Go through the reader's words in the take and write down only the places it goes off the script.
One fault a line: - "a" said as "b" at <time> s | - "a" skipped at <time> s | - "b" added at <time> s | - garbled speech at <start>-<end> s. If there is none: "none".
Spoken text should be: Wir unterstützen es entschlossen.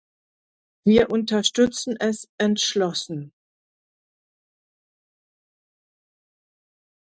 none